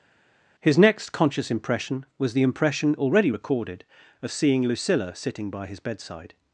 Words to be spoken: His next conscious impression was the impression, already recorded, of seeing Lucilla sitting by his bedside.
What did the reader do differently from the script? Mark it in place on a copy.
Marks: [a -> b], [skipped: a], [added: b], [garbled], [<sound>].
His next conscious impression was the impression, already recorded, of seeing Lucilla sitting by his bedside.